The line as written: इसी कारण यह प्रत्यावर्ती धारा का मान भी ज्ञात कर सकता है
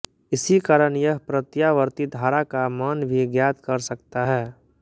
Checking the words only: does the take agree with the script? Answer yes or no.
yes